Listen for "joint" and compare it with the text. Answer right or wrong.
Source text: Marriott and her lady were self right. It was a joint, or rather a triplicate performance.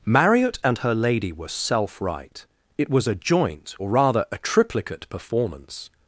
right